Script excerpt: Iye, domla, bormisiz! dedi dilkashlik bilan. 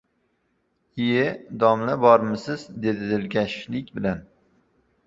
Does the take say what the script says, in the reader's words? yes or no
yes